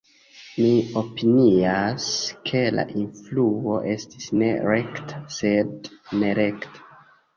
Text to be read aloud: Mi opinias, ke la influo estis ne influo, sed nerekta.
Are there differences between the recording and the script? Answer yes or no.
yes